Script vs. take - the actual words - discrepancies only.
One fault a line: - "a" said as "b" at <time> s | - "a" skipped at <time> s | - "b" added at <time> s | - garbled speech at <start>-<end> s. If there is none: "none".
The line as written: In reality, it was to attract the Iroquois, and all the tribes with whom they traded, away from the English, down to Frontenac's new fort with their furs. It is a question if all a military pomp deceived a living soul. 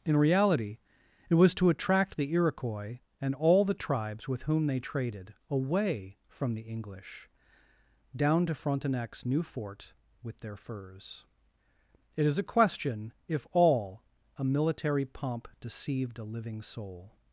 none